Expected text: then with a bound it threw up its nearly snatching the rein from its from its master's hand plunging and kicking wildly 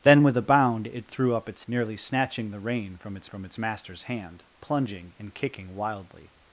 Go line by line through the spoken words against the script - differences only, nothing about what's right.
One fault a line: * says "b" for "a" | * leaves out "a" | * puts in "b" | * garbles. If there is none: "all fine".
all fine